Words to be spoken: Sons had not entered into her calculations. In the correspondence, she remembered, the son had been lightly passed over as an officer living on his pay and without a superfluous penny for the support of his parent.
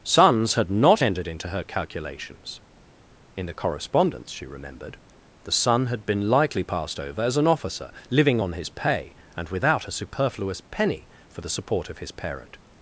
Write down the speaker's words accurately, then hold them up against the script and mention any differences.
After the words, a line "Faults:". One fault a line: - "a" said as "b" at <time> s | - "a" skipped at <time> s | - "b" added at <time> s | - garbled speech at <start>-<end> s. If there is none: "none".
Sons had not entered into her calculations. In the correspondence, she remembered, the son had been lightly passed over as an officer living on his pay and without a superfluous penny for the support of his parent.
Faults:
none